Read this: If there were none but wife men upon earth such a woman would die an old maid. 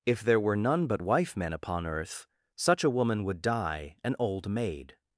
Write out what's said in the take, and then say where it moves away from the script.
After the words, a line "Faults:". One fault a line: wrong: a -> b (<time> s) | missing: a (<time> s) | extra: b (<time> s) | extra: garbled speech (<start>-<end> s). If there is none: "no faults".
If there were none but wife men upon earth such a woman would die an old maid.
Faults:
no faults